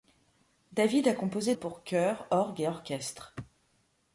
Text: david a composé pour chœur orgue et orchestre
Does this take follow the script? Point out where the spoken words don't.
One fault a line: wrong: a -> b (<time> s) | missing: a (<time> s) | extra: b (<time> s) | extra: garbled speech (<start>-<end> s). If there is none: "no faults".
no faults